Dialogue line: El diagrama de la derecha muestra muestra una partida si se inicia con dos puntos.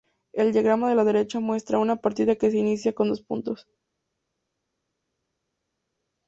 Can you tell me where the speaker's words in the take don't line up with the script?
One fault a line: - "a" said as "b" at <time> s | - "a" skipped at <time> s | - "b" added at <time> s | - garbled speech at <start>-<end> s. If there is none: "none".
- "muestra" skipped at 1.8 s
- "si" said as "que" at 2.3 s